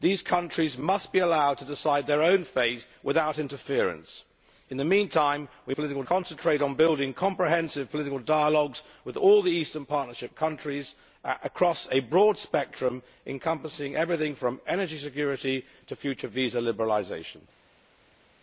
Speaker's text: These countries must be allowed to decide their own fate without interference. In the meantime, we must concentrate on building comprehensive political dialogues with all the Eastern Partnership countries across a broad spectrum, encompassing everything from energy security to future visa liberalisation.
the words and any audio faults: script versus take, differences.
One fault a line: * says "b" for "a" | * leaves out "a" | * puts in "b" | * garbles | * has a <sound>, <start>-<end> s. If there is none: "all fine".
* says "political" for "must"